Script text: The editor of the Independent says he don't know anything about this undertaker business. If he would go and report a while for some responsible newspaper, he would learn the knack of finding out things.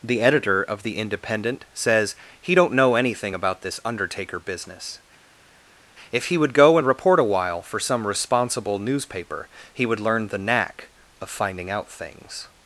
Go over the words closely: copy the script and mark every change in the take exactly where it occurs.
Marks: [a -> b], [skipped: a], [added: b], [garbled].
The editor of the Independent says he don't know anything about this undertaker business. If he would go and report a while for some responsible newspaper, he would learn the knack of finding out things.